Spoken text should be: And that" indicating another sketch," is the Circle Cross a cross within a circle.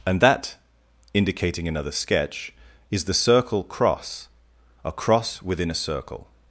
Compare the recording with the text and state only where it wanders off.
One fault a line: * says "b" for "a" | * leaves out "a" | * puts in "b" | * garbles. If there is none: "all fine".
all fine